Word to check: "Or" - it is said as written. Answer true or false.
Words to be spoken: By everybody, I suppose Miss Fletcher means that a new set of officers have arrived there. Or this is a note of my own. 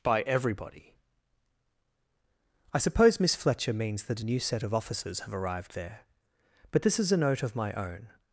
false